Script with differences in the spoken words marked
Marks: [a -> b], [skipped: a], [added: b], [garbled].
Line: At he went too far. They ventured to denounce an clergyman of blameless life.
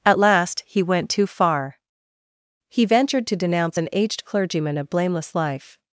At [added: last] he went too far. [They -> He] ventured to denounce an [added: aged] clergyman of blameless life.